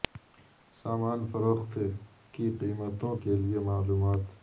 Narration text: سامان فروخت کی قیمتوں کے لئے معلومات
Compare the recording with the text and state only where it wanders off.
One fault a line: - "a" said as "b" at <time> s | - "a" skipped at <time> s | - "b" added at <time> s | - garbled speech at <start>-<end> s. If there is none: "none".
none